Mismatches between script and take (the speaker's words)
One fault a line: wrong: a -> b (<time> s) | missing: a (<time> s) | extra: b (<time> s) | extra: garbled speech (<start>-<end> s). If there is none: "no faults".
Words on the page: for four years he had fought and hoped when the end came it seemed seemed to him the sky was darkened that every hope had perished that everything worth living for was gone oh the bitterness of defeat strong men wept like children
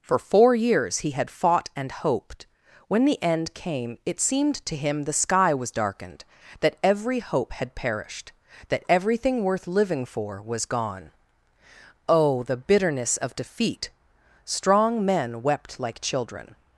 missing: seemed (4.7 s)